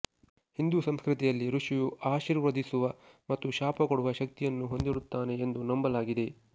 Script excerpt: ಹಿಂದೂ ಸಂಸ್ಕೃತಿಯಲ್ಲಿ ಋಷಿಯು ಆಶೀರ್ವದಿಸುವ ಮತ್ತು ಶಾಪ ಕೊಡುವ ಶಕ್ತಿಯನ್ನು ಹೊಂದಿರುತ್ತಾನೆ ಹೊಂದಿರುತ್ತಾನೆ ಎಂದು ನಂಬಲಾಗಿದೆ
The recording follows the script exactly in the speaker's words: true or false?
false